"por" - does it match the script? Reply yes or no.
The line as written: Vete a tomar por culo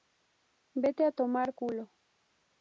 no